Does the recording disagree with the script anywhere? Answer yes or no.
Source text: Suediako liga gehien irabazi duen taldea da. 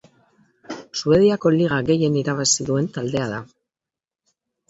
no